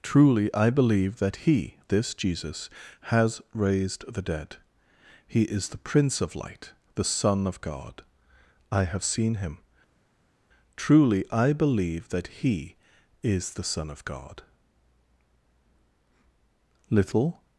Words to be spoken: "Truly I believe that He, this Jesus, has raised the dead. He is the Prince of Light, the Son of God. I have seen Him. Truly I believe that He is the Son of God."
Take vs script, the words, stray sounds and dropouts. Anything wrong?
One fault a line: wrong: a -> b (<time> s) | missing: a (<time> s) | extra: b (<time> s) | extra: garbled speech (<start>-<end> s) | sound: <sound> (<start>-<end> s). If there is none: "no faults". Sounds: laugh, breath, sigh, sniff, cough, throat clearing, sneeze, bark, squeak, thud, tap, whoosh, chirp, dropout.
extra: Little (16.9 s)